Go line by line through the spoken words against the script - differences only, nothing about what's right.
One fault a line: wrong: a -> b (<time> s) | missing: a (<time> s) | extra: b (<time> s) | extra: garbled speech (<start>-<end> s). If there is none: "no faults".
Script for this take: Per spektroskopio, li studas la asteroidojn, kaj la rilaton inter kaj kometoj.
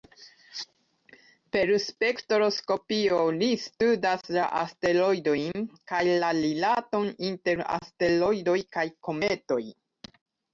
extra: asteroidoj (7.8 s)